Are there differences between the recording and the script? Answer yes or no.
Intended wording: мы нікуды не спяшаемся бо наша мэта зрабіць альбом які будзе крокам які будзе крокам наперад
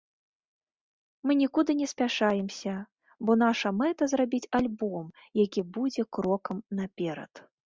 yes